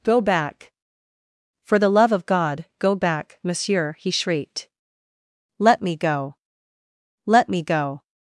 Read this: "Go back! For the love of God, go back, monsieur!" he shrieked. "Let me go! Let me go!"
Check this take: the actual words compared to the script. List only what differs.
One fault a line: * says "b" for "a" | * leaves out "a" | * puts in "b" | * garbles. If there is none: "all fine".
all fine